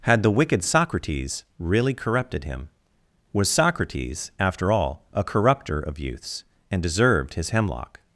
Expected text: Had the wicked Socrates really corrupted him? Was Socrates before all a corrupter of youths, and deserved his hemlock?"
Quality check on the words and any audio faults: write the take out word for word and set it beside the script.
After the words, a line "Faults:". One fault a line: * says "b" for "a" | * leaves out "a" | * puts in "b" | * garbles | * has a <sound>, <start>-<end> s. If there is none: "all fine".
Had the wicked Socrates really corrupted him? Was Socrates after all a corrupter of youths, and deserved his hemlock?"
Faults:
* says "after" for "before"